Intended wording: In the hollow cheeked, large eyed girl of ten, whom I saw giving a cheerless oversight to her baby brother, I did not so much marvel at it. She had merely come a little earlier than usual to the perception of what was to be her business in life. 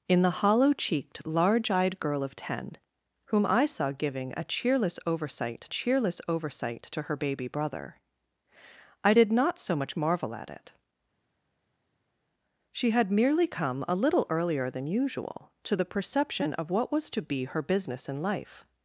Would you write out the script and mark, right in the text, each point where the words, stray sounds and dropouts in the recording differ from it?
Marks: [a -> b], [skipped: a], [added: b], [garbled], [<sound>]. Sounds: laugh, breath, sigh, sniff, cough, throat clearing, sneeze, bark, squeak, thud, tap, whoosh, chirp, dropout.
In the hollow cheeked, large eyed girl of ten, whom I saw giving a cheerless oversight [added: cheerless oversight] to her baby brother, I did not so much marvel at it. She had merely come a little earlier than usual to the perception of what was to be her business in life.